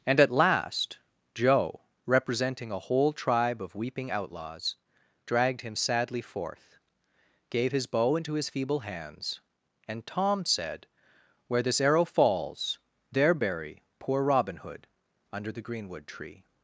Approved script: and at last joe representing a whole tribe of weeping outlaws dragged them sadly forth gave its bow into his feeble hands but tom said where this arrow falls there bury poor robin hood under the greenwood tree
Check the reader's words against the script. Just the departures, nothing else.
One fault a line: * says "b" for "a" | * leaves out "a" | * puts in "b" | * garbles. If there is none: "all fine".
* says "him" for "them"
* says "his" for "its"
* says "and" for "but"